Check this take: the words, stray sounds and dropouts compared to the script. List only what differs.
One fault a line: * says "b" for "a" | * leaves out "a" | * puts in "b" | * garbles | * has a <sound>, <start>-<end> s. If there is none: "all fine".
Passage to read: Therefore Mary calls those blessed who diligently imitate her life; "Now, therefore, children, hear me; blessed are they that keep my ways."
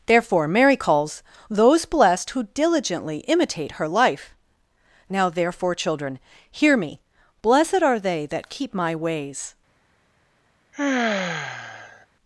* has a sigh, 10.7-12.1 s